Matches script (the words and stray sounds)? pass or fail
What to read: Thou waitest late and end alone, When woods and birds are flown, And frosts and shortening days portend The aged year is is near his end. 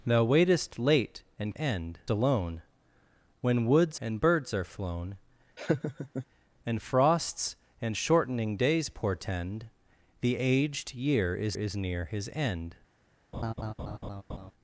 fail